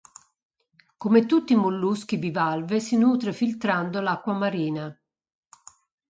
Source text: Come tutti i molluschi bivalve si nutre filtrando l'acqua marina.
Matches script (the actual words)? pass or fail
pass